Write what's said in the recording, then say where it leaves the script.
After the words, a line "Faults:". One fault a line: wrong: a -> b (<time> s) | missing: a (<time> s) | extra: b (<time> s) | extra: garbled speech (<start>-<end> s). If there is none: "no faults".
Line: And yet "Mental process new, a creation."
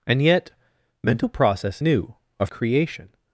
And yet "Mental process new, a creation."
Faults:
no faults